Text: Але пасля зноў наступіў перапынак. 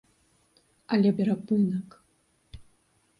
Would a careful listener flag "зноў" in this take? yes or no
yes